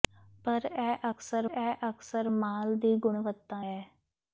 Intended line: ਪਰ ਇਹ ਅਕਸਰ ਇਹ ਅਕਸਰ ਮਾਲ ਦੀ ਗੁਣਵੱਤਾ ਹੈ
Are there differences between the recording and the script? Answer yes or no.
no